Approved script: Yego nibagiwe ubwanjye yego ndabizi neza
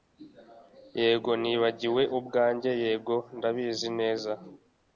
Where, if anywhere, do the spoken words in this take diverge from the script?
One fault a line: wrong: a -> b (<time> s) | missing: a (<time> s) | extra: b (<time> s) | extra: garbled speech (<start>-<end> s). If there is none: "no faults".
no faults